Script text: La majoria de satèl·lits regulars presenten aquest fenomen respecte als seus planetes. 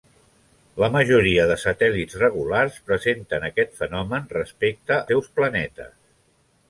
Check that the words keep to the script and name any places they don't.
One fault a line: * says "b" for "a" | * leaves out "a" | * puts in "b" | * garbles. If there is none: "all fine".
* leaves out "als"